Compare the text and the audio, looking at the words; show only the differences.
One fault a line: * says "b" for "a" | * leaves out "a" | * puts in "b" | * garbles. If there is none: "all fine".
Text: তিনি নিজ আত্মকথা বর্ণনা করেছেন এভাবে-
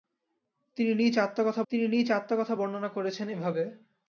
* puts in "তিনি নিজ আত্মকথা"